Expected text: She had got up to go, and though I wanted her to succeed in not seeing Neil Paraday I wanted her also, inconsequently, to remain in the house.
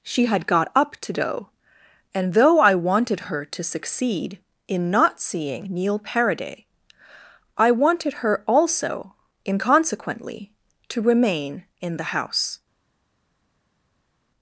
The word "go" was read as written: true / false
false